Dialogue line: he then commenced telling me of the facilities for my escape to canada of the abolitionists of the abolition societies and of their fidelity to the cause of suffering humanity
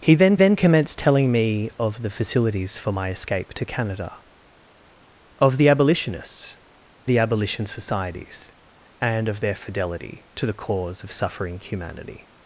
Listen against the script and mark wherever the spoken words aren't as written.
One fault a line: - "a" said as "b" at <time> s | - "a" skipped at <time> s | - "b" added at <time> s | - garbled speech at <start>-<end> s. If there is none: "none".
- "then" added at 0.3 s
- "of" skipped at 6.6 s